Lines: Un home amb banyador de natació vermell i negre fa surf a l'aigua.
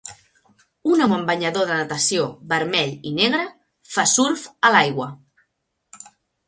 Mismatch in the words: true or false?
false